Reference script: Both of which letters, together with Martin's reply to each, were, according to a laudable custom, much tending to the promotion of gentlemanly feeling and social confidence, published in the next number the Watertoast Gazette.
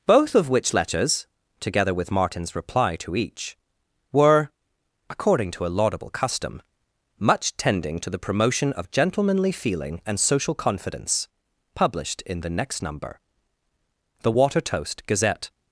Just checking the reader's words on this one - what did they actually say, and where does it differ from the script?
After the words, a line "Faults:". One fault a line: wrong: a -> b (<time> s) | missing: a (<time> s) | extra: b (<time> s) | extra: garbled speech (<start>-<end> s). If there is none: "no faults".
Both of which letters, together with Martin's reply to each, were, according to a laudable custom, much tending to the promotion of gentlemanly feeling and social confidence, published in the next number the Watertoast Gazette.
Faults:
no faults